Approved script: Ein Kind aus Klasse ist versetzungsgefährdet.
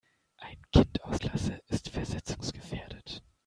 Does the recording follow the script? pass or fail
pass